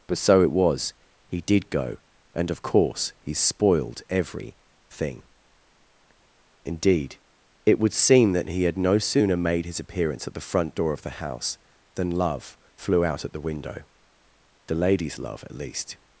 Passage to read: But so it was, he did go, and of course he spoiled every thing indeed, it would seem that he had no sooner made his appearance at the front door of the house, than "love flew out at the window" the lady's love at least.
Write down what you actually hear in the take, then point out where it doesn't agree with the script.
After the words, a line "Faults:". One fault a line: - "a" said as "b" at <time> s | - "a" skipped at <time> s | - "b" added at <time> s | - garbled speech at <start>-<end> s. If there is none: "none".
But so it was, he did go, and of course he spoiled every thing indeed, it would seem that he had no sooner made his appearance at the front door of the house, than "love flew out at the window" the lady's love at least.
Faults:
none